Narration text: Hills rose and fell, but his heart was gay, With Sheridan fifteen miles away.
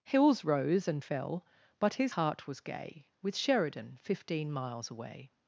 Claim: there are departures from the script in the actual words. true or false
false